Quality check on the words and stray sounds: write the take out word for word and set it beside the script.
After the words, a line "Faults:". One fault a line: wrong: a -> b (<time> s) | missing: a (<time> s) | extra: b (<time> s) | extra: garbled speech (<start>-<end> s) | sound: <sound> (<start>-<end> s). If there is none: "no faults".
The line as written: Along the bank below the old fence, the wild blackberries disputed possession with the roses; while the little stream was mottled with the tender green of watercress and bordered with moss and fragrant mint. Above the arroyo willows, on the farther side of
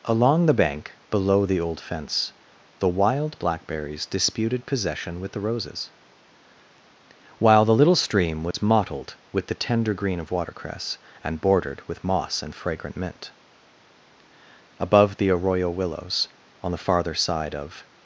Along the bank below the old fence, the wild blackberries disputed possession with the roses; while the little stream was mottled with the tender green of watercress and bordered with moss and fragrant mint. Above the arroyo willows, on the farther side of
Faults:
sound: dropout (8.5-8.5 s)